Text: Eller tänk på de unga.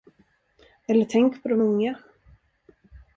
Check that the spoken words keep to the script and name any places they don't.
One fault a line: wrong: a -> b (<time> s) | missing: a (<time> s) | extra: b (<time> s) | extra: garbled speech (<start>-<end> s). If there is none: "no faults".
no faults